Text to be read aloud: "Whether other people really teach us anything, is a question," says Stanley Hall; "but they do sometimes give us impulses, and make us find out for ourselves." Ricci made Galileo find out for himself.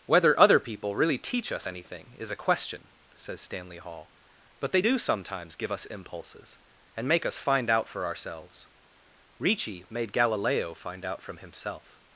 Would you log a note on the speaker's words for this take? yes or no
yes